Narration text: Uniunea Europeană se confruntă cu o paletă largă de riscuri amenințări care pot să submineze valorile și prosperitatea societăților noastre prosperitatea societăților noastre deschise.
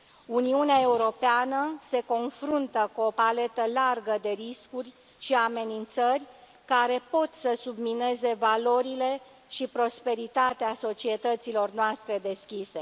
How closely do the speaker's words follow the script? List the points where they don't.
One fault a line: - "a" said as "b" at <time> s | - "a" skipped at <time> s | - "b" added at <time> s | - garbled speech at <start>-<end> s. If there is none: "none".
- "și" added at 5.2 s
- "prosperitatea societăților noastre" skipped at 12.2 s